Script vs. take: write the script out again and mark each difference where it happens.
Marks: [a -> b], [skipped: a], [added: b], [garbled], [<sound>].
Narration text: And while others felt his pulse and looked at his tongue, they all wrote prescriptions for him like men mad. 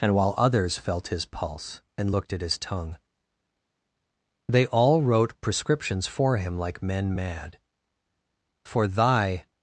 And while others felt his pulse and looked at his tongue, they all wrote prescriptions for him like men mad. [added: For thy]